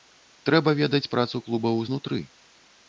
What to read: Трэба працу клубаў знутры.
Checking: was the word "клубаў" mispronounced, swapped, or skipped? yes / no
no